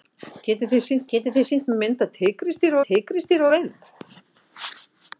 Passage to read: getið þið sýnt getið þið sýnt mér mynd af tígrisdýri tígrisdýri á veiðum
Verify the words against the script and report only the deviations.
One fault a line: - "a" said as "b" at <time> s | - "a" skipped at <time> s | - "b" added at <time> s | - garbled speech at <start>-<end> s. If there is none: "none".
none